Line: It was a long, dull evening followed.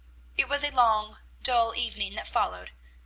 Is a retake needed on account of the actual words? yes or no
yes